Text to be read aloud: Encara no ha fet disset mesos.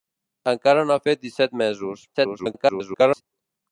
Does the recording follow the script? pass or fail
fail